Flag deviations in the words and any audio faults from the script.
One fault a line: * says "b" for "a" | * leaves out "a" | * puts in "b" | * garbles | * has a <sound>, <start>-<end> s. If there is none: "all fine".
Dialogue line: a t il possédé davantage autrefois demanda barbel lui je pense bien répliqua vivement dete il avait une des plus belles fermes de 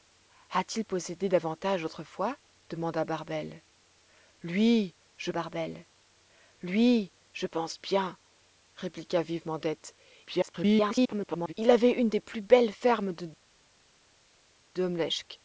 * puts in "barbel lui je"
* garbles